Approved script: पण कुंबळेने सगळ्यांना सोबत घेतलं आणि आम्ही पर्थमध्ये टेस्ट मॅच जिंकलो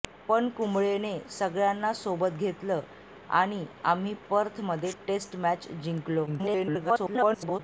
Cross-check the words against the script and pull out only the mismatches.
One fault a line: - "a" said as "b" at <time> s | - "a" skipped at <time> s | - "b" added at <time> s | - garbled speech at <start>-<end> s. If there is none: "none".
- garbled speech at 6.3-7.6 s